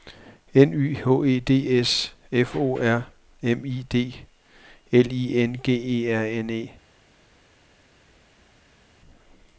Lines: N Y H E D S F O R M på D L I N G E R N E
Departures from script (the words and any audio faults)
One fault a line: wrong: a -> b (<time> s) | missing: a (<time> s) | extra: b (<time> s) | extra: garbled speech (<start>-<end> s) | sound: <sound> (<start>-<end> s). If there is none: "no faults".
wrong: på -> I (3.6 s)